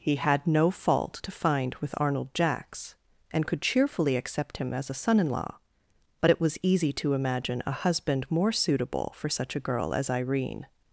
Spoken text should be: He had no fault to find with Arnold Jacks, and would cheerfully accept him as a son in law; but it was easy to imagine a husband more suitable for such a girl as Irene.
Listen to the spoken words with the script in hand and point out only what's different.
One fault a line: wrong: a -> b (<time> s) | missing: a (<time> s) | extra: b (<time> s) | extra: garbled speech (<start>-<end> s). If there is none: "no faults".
wrong: would -> could (3.4 s)